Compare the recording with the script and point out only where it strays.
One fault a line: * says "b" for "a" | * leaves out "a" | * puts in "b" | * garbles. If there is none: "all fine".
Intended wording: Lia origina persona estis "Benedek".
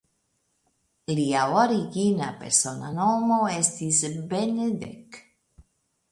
* puts in "nomo"